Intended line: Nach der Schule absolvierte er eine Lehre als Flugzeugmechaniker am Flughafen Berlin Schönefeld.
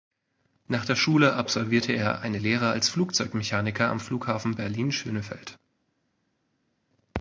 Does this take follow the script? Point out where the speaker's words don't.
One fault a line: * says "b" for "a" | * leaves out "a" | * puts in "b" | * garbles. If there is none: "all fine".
all fine